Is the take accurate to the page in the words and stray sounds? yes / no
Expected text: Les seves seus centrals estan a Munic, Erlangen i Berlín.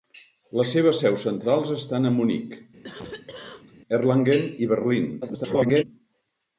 no